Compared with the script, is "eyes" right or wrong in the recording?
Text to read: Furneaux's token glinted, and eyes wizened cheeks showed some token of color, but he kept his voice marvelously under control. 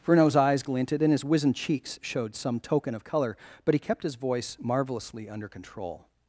wrong